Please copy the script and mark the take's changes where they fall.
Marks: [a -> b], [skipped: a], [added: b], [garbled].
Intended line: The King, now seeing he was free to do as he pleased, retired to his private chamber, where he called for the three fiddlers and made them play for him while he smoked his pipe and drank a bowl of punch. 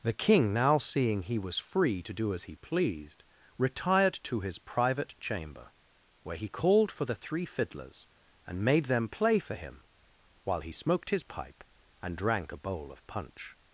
The King, now seeing he was free to do as he pleased, retired to his private chamber, where he called for the three fiddlers and made them play for him while he smoked his pipe and drank a bowl of punch.